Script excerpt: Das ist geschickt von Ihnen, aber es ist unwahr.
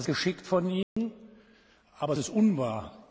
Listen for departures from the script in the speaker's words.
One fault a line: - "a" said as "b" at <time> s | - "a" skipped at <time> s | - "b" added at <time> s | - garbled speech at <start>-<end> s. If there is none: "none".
- "ist" skipped at 0.1 s
- "es" skipped at 2.1 s